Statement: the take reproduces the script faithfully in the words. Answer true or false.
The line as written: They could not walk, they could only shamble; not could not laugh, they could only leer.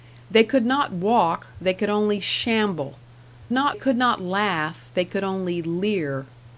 true